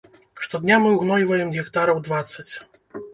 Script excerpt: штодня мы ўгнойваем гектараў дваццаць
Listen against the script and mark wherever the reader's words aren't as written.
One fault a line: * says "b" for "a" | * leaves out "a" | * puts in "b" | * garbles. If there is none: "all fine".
all fine